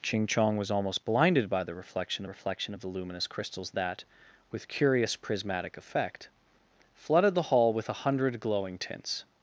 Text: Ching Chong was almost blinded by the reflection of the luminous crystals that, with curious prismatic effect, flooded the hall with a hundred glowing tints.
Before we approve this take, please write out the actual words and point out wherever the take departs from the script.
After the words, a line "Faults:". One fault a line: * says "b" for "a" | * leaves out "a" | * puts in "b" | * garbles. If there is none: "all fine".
Ching Chong was almost blinded by the reflection reflection of the luminous crystals that, with curious prismatic effect, flooded the hall with a hundred glowing tints.
Faults:
* puts in "reflection"